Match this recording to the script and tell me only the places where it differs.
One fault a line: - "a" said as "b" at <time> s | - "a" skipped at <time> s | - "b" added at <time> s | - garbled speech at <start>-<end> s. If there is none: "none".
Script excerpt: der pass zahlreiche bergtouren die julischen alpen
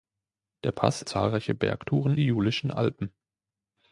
none